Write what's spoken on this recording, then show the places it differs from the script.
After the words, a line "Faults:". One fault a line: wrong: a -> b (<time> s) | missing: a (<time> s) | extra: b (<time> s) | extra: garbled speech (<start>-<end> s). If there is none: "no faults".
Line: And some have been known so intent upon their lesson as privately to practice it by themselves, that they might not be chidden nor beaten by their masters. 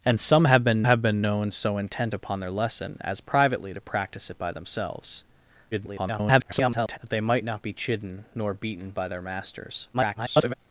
And some have been have been known so intent upon their lesson as privately to practice it by themselves, [garbled] that they might not be chidden nor beaten by their masters. [garbled]
Faults:
extra: have been (0.8 s)
extra: garbled speech (5.7-7.0 s)
extra: garbled speech (9.9-10.5 s)